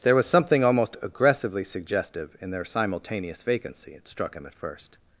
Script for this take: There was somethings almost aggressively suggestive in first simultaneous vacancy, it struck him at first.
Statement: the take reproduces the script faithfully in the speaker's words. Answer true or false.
false